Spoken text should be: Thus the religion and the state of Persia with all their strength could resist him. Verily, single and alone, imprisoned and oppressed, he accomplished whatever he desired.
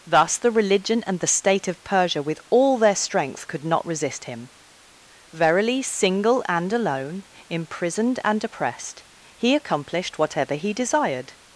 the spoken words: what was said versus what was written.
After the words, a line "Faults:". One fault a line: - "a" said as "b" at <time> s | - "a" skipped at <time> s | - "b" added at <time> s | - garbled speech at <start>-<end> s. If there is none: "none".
Thus the religion and the state of Persia with all their strength could not resist him. Verily, single and alone, imprisoned and oppressed, he accomplished whatever he desired.
Faults:
- "not" added at 3.6 s